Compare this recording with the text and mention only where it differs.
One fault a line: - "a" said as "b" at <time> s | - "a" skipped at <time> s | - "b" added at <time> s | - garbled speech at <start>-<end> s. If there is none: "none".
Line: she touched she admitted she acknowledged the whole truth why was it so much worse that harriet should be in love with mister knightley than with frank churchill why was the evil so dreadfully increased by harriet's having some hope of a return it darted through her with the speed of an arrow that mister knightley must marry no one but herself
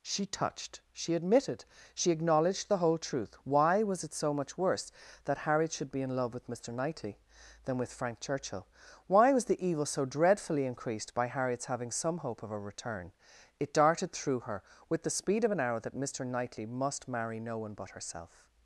none